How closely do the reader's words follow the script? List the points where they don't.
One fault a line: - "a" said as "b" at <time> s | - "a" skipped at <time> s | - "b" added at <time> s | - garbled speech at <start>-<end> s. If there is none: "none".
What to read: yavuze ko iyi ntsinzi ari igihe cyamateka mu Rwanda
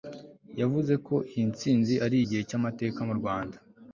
none